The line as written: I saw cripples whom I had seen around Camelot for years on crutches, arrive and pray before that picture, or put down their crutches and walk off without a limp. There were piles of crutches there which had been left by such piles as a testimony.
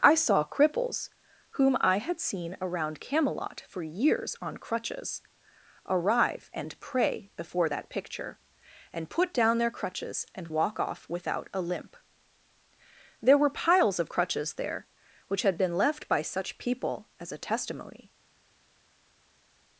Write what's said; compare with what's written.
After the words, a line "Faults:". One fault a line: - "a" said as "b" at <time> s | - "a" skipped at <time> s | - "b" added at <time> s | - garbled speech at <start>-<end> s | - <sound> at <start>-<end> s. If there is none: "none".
I saw cripples whom I had seen around Camelot for years on crutches, arrive and pray before that picture, and put down their crutches and walk off without a limp. There were piles of crutches there which had been left by such people as a testimony.
Faults:
- "or" said as "and" at 8.9 s
- "piles" said as "people" at 16.6 s